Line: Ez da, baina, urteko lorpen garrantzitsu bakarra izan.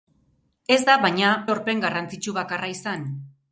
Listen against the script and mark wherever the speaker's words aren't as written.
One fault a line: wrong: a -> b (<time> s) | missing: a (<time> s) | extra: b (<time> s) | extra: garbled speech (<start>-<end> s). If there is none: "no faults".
missing: urteko (1.3 s)